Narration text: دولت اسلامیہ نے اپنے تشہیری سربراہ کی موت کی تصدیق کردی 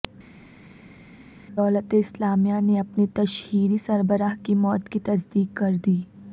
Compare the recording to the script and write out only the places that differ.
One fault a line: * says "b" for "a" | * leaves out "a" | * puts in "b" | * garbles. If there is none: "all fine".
all fine